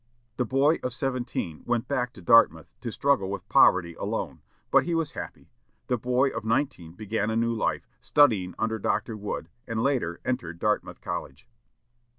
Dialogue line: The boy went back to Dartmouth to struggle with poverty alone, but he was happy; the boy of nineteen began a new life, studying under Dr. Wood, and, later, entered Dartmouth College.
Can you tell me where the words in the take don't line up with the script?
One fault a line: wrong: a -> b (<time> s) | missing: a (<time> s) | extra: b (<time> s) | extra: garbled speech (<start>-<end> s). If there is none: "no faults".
extra: of seventeen (0.8 s)